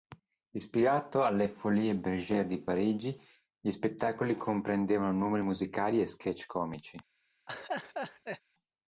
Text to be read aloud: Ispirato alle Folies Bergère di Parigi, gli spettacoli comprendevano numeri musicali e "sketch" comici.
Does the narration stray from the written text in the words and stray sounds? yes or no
yes